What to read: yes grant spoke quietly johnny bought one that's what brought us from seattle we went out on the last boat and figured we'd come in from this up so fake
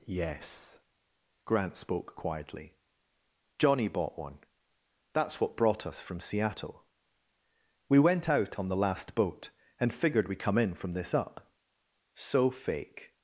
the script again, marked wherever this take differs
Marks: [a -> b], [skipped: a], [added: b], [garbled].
yes grant spoke quietly johnny bought one that's what brought us from seattle we went out on the last boat and figured we'd come in from this up so fake